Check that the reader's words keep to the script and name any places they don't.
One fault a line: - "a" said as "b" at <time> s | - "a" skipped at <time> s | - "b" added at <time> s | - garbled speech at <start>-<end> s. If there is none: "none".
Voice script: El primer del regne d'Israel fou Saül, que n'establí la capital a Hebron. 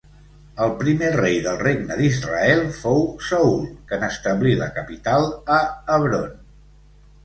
- "rei" added at 1.1 s